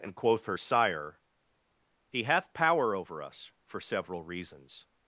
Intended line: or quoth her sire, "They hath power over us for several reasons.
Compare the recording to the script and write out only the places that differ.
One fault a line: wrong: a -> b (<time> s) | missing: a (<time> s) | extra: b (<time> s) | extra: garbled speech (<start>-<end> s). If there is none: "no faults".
wrong: or -> and (0.0 s)
wrong: They -> He (2.1 s)